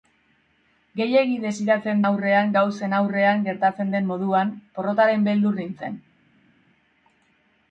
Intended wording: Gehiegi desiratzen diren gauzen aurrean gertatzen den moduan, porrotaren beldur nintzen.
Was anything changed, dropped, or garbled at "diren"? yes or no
yes